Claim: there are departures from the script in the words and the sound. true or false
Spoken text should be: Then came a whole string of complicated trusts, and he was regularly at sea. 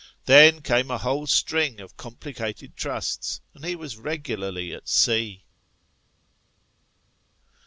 false